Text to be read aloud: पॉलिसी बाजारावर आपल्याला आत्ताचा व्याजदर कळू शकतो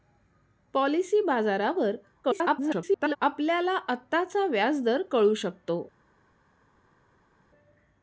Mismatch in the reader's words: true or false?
true